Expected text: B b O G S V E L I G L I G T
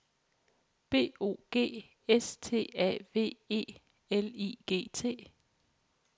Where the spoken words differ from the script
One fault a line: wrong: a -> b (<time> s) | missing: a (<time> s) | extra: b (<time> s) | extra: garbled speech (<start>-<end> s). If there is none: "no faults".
missing: b (1.1 s)
extra: T A (2.4 s)
missing: L I G (4.9 s)